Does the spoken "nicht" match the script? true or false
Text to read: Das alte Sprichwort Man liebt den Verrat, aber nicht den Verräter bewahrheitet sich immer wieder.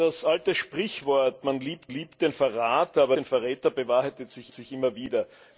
false